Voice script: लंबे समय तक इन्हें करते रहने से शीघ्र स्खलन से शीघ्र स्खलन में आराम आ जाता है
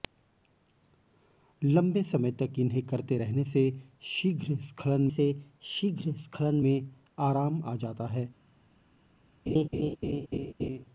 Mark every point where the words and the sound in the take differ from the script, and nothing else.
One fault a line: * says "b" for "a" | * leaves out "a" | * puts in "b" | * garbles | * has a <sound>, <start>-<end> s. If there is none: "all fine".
* has a laugh, 9.5-10.9 s